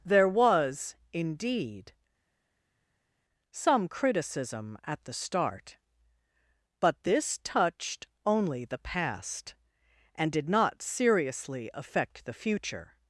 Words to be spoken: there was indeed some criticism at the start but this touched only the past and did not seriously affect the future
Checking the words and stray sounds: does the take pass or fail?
pass